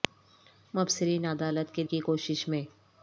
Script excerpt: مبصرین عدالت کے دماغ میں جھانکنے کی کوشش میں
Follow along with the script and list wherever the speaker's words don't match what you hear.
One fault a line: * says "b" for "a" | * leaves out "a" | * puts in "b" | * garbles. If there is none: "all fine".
* leaves out "دماغ میں جھانکنے"